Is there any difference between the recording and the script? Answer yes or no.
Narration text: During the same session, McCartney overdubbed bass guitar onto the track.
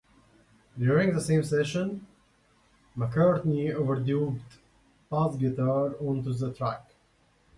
no